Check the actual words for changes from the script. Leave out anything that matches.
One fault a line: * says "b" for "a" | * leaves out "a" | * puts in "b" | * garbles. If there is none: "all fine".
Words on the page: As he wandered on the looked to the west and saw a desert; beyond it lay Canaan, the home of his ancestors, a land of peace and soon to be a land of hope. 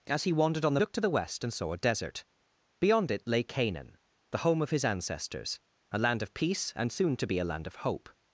all fine